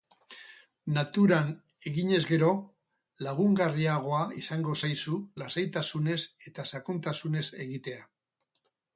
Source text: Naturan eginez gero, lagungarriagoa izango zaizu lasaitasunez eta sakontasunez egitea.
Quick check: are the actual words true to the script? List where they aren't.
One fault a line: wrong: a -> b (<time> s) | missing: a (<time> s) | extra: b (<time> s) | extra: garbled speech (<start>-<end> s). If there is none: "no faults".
no faults